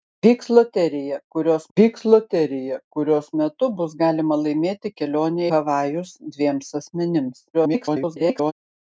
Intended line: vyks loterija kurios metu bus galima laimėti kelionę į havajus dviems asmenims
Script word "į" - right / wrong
wrong